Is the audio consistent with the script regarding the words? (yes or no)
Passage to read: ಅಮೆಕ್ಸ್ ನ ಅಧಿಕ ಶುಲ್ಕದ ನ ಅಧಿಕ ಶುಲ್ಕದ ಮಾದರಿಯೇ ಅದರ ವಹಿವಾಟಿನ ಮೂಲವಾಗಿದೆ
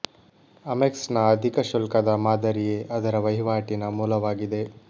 no